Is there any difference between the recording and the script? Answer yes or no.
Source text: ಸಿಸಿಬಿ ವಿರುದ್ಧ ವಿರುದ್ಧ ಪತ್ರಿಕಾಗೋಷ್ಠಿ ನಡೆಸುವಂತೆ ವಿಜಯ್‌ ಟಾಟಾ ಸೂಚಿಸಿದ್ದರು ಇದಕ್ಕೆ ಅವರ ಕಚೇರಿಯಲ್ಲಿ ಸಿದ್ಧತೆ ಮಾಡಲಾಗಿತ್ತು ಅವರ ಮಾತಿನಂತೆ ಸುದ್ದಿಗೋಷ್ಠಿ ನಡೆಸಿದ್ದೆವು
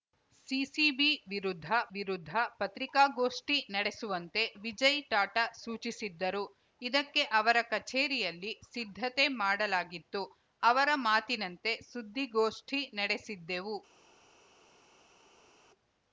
no